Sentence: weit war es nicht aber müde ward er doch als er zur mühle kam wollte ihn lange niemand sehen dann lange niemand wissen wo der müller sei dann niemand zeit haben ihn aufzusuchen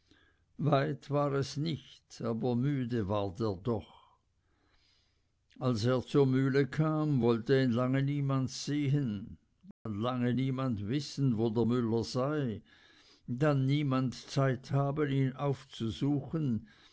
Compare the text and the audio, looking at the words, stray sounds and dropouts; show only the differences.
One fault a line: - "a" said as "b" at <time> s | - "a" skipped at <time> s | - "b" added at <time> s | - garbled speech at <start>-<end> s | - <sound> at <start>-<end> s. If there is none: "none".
- dropout at 9.7-9.9 s